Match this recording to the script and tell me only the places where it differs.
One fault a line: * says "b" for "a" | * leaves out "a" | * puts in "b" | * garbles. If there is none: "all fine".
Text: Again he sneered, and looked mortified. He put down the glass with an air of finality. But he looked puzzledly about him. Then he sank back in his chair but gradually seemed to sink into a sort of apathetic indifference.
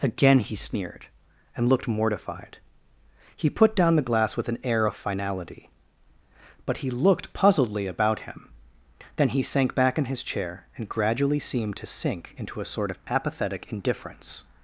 * says "and" for "but"